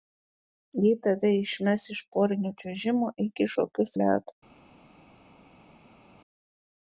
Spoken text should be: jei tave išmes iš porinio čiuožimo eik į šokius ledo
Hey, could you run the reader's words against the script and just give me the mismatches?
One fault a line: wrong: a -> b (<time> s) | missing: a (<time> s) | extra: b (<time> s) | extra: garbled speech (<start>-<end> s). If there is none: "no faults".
no faults